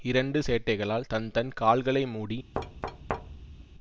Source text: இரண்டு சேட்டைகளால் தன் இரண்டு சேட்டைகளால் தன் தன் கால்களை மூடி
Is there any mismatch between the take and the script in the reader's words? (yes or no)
yes